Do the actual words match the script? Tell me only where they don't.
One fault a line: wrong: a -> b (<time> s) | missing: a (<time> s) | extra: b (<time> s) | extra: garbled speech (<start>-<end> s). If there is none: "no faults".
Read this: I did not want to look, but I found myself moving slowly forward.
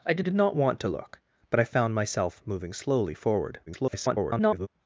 extra: did (0.2 s)
extra: garbled speech (3.7-4.7 s)